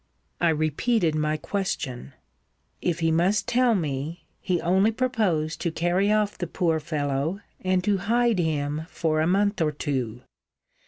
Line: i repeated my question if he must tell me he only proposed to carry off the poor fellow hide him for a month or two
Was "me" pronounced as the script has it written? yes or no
yes